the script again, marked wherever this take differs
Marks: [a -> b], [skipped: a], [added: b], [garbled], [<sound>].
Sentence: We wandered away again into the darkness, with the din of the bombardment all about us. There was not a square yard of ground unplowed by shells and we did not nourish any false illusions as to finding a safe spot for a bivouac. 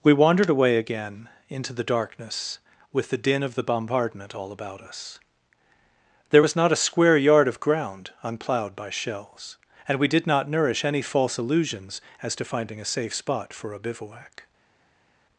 We wandered away again into the darkness, with the din of the bombardment all about us. There was not a square yard of ground unplowed by shells and we did not nourish any false illusions as to finding a safe spot for a bivouac.